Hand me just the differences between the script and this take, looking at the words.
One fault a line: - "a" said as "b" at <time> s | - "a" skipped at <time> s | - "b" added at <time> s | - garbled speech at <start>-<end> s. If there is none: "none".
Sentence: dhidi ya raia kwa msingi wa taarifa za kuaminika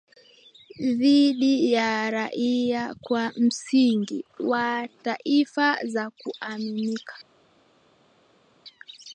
none